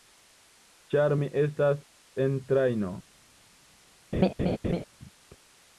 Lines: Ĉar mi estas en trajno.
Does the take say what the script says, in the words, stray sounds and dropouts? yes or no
no